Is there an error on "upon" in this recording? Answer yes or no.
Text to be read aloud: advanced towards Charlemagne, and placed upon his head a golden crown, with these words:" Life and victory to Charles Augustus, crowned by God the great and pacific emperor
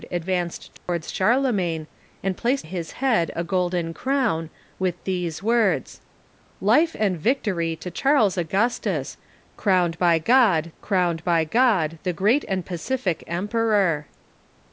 yes